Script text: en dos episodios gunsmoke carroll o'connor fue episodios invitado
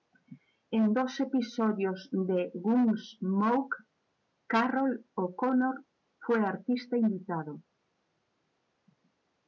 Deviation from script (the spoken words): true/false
true